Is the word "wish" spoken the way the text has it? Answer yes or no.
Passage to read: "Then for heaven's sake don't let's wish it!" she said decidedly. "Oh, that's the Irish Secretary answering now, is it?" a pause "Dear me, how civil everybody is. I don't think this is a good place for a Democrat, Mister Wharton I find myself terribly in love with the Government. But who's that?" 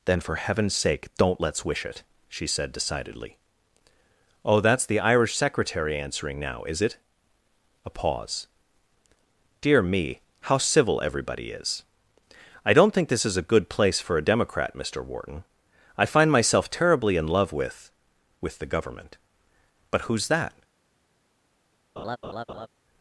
yes